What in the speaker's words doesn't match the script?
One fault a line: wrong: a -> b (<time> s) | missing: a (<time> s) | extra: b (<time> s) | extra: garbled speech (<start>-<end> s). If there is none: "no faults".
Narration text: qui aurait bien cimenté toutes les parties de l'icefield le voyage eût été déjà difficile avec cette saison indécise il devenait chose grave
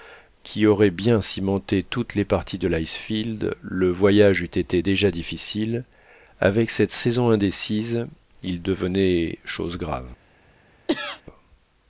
no faults